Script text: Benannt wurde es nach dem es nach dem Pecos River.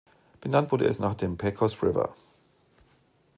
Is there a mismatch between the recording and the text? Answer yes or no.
yes